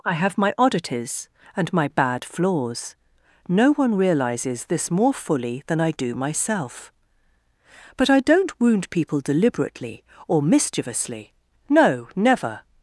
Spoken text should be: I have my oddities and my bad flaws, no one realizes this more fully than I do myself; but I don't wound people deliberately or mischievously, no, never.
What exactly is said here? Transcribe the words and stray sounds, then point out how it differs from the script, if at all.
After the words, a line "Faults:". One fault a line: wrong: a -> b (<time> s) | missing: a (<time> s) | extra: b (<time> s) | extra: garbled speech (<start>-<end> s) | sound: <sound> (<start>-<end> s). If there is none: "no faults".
I have my oddities and my bad flaws, no one realizes this more fully than I do myself; but I don't wound people deliberately or mischievously, no, never.
Faults:
no faults